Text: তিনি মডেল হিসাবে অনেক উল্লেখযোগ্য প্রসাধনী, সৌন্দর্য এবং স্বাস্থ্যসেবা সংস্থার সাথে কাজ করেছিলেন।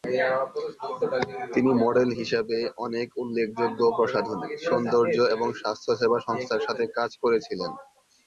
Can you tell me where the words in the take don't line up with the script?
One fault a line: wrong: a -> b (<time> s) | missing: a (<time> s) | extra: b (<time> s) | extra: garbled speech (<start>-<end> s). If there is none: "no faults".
no faults